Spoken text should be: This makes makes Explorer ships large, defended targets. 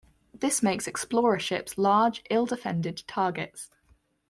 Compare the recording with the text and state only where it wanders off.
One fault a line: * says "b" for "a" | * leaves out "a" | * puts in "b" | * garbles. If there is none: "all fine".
* leaves out "makes"
* puts in "ill"